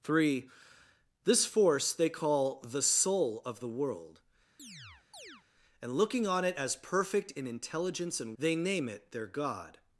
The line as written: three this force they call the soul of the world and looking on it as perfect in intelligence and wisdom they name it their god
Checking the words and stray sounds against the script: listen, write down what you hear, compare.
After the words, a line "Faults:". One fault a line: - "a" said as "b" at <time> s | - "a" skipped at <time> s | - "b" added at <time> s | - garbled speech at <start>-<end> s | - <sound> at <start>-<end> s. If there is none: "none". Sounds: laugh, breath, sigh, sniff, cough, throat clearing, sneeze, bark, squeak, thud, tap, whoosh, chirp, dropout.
three this force they call the soul of the world and looking on it as perfect in intelligence and they name it their god
Faults:
- chirp at 4.6-5.4 s
- "wisdom" skipped at 8.4 s